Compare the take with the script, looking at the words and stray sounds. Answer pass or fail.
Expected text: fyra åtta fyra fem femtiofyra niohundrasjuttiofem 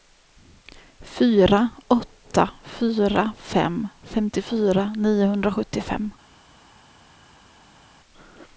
pass